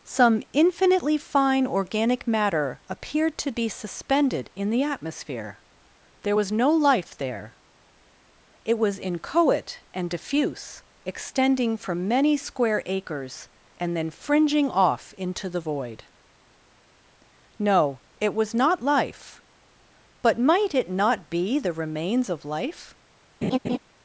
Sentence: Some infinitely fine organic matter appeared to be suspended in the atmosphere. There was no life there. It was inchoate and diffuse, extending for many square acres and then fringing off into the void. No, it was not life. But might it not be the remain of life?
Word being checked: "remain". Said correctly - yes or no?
no